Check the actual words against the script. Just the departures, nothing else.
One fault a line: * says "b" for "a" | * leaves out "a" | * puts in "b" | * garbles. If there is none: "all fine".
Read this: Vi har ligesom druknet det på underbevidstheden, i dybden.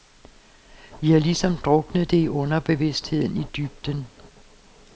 * says "i" for "på"